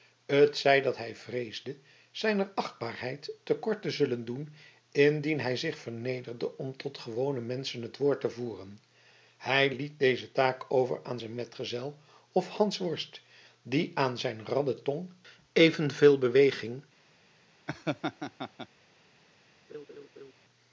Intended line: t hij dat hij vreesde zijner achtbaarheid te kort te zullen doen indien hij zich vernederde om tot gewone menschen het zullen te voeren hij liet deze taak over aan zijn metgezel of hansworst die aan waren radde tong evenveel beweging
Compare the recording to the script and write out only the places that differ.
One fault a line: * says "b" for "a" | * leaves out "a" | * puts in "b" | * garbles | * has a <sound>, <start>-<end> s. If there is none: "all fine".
* says "zij" for "hij"
* says "woord" for "zullen"
* says "zijn" for "waren"
* has a laugh, 17.7-18.7 s
* has a laugh, 19.7-20.3 s